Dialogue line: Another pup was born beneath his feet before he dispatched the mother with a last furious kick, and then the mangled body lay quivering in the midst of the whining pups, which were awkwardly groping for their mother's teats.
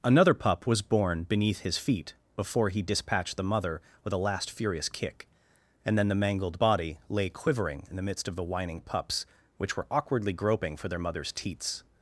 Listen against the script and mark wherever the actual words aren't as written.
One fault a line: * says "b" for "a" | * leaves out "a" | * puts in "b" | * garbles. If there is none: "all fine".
all fine